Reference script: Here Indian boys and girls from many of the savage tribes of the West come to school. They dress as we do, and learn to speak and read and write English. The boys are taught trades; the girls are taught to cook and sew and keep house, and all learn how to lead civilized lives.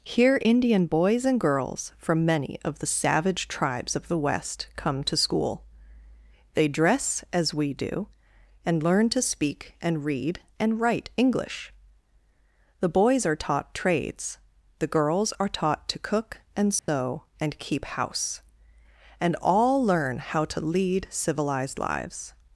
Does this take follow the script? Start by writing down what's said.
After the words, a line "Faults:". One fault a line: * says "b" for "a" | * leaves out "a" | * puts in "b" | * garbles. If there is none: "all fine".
Here Indian boys and girls from many of the savage tribes of the West come to school. They dress as we do, and learn to speak and read and write English. The boys are taught trades; the girls are taught to cook and sew and keep house, and all learn how to lead civilized lives.
Faults:
all fine